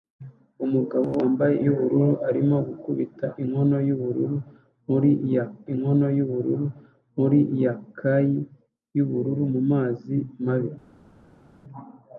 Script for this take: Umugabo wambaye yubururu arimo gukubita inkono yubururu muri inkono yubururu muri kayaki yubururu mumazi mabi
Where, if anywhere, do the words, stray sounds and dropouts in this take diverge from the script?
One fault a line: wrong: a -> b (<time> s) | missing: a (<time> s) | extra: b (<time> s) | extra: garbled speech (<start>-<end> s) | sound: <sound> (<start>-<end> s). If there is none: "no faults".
no faults